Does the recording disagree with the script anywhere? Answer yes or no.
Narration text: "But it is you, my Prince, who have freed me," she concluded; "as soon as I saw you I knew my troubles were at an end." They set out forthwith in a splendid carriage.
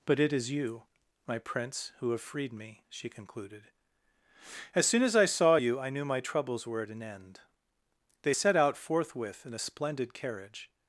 no